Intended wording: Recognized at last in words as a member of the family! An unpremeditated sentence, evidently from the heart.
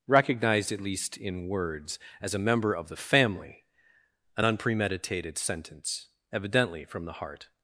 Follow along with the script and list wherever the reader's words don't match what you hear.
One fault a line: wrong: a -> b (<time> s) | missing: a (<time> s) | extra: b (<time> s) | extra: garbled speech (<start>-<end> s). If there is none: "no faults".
wrong: last -> least (0.8 s)